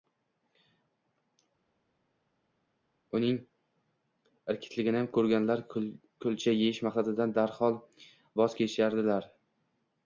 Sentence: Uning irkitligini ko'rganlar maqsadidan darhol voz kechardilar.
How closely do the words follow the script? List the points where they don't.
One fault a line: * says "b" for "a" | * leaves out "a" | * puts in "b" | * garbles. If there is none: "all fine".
* puts in "kulcha yeyish"